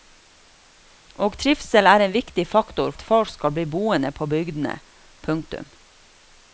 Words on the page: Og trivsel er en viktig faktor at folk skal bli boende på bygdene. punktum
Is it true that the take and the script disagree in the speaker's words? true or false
false